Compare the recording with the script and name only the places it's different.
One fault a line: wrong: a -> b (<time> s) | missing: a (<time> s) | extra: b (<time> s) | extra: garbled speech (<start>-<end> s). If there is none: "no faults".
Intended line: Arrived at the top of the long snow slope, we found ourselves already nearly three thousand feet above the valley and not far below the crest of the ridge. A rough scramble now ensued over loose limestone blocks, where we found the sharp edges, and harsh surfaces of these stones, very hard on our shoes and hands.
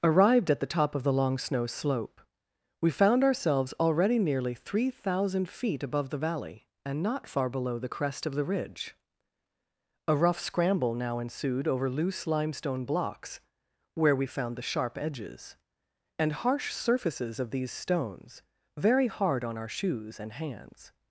no faults